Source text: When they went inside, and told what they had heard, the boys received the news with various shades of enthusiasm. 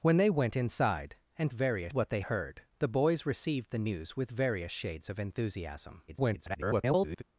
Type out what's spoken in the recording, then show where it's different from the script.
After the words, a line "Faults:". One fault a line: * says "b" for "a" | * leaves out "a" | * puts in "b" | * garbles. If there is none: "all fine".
When they went inside, and various what they heard, the boys received the news with various shades of enthusiasm. [garbled]
Faults:
* says "various" for "told"
* leaves out "had"
* garbles